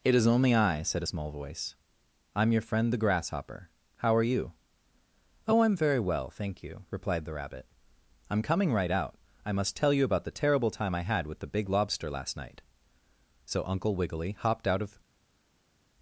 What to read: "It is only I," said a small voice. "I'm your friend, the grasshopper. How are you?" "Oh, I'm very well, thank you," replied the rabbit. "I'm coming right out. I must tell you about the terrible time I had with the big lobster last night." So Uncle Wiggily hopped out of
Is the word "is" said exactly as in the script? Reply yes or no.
yes